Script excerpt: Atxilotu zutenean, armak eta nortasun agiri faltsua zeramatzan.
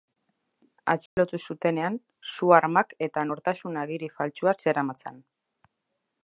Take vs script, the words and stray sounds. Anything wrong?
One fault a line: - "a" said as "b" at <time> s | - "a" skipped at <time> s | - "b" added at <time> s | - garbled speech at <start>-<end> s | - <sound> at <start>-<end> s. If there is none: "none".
- dropout at 1.1-1.2 s
- "su" added at 2.3 s